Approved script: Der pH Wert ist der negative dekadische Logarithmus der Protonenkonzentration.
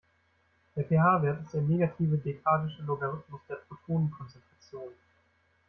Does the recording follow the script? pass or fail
pass